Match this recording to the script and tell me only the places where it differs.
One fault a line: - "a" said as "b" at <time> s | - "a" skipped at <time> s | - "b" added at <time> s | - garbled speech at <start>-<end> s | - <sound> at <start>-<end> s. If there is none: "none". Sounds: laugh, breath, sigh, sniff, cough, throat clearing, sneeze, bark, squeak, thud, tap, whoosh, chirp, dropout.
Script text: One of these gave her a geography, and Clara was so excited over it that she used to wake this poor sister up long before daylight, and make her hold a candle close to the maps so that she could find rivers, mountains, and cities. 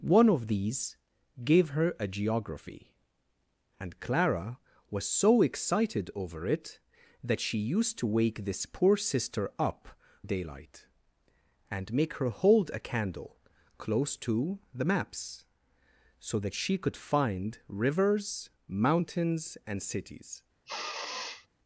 - "long before" skipped at 9.9 s
- sniff at 20.7-21.5 s